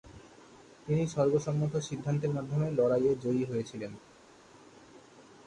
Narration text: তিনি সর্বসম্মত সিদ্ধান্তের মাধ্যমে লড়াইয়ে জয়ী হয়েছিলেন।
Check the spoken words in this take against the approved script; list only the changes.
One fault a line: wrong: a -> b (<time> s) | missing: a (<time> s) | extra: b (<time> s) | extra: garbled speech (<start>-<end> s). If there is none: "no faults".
no faults